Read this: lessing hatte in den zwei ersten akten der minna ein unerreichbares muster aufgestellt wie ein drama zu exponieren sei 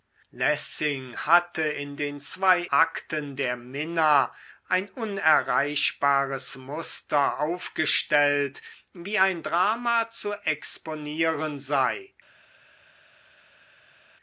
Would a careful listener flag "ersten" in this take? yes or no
yes